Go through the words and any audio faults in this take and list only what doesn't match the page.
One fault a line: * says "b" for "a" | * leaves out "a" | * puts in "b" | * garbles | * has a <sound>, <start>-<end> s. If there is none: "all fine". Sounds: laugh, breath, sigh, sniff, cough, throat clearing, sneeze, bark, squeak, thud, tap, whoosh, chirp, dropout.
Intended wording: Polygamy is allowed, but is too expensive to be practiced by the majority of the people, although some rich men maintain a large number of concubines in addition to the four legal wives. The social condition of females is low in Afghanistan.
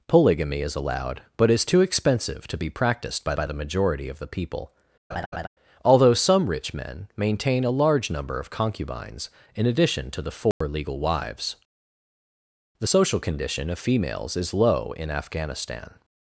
* puts in "by"
* has a laugh, 5.1-5.5 s
* has a dropout, 10.5-10.6 s